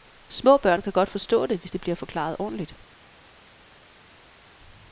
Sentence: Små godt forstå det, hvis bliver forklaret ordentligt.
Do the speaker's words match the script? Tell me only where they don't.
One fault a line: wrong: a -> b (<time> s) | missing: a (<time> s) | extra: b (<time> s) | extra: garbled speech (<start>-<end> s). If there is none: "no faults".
extra: børn kan (0.6 s)
extra: det (1.7 s)